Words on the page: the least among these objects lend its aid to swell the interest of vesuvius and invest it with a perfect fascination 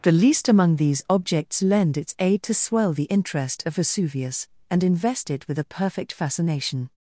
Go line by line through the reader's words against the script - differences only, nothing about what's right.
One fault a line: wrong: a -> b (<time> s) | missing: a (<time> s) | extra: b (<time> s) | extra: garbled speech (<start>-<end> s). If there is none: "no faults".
no faults